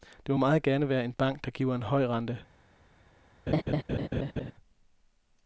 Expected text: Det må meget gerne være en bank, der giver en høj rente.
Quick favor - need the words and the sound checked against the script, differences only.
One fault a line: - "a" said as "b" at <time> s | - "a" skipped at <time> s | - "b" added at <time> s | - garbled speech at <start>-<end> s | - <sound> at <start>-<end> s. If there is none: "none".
- laugh at 3.5-4.5 s